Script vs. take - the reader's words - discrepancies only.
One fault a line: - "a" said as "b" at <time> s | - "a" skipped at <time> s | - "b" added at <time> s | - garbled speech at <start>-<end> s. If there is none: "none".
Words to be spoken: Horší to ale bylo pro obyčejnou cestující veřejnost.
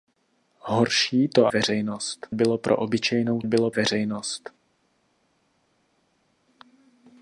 - "ale" said as "veřejnost" at 1.5 s
- "cestující" said as "bylo" at 3.4 s